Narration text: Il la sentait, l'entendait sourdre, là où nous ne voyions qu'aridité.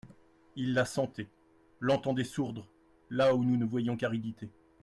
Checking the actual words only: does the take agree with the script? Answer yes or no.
yes